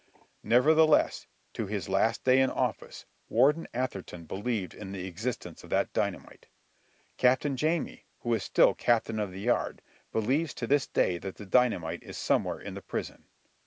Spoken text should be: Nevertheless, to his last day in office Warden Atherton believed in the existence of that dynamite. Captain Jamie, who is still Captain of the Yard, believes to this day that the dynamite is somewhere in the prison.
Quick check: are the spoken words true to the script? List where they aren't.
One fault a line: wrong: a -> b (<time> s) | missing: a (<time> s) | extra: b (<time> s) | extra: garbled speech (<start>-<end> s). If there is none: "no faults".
no faults